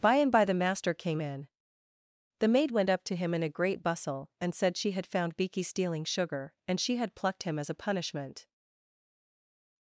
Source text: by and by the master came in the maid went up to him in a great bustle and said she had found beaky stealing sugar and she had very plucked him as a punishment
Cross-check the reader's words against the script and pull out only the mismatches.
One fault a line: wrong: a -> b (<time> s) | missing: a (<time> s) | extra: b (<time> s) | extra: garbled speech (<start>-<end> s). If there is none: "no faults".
missing: very (7.1 s)